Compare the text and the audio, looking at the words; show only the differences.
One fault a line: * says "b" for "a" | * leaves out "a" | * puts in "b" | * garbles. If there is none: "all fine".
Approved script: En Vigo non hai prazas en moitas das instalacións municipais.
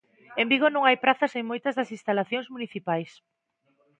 all fine